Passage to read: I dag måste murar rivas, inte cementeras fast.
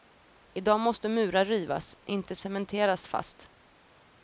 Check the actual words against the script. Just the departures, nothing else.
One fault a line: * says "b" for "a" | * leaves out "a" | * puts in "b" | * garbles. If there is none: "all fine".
all fine